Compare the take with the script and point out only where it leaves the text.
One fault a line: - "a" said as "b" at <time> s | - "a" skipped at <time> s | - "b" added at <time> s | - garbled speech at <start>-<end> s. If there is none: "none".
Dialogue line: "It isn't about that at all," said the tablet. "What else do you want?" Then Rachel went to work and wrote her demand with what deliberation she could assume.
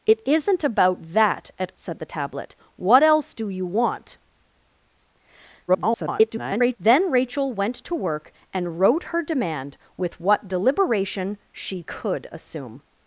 - "all" skipped at 1.7 s
- garbled speech at 5.7-6.8 s